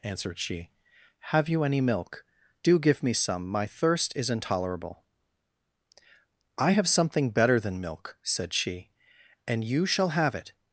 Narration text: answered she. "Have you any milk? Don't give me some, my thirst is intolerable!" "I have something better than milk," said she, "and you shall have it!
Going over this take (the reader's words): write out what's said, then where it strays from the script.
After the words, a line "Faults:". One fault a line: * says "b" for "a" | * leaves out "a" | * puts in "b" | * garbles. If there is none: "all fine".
answered she. "Have you any milk? Do give me some, my thirst is intolerable!" "I have something better than milk," said she, "and you shall have it!
Faults:
* says "Do" for "Don't"